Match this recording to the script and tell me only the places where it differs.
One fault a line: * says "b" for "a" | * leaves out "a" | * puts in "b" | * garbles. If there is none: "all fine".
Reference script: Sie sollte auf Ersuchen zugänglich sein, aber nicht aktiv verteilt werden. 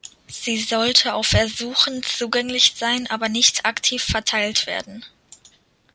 all fine